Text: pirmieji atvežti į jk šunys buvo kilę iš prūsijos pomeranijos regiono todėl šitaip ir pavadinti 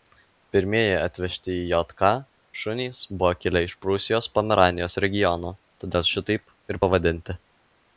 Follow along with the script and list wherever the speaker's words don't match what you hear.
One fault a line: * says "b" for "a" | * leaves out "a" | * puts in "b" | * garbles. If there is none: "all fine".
all fine